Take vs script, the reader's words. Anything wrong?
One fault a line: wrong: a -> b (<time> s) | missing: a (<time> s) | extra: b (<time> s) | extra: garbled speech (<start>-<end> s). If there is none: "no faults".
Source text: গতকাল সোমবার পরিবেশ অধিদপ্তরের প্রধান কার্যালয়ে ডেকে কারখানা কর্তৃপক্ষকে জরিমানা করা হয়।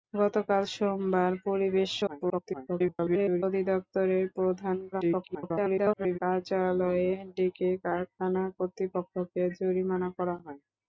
extra: garbled speech (2.1-3.4 s)
extra: garbled speech (4.9-6.2 s)